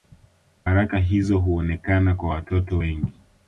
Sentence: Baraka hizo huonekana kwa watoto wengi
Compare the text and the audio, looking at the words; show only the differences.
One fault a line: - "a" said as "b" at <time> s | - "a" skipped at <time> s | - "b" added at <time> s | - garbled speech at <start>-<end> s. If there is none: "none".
none